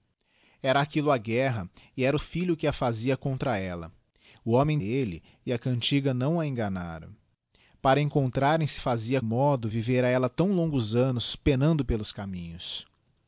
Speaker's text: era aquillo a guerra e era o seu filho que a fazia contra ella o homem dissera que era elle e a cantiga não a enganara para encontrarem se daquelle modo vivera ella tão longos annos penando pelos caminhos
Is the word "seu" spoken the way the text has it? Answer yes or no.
no